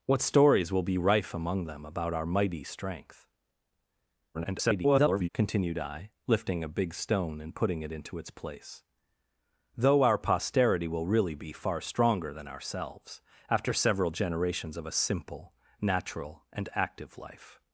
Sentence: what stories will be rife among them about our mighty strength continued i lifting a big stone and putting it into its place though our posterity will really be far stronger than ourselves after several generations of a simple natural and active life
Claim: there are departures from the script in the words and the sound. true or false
true